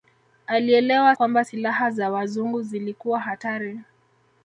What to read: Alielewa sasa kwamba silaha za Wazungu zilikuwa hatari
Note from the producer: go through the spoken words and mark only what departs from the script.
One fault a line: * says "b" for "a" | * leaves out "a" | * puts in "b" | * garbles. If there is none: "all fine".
* leaves out "sasa"